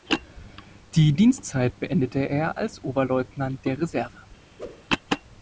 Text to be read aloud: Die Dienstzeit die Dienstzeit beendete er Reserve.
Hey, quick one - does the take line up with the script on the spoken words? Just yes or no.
no